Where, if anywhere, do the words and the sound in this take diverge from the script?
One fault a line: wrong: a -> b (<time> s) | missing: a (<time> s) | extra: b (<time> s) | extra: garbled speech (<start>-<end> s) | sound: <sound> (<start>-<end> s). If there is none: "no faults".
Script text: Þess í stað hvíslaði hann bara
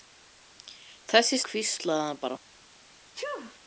missing: stað (1.4 s)
sound: sneeze (3.1-3.6 s)